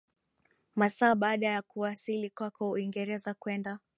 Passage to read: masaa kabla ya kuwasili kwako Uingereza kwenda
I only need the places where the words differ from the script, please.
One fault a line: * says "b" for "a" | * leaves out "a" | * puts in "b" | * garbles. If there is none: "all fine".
* says "baada" for "kabla"